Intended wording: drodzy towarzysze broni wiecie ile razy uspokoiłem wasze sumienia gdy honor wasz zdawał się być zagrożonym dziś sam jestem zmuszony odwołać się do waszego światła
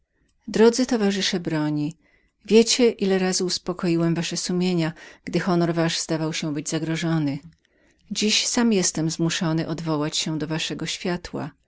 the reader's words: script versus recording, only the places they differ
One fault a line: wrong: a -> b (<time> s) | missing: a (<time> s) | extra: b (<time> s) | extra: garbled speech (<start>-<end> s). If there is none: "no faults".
no faults